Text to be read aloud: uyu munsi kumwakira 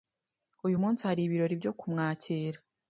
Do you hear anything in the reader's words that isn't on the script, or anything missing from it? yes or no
yes